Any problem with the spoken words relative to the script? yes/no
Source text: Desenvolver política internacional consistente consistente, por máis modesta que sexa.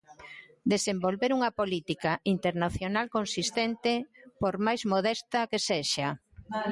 yes